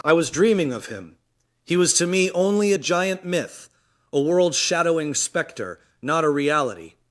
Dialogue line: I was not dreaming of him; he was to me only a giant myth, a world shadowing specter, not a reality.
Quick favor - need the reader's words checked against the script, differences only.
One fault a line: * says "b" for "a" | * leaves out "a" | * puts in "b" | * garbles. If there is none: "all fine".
* leaves out "not"